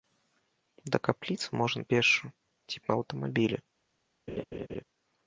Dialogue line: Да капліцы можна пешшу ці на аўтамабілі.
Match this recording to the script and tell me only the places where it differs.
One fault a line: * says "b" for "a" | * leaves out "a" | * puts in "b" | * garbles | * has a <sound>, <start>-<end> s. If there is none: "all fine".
* has a laugh, 4.3-4.8 s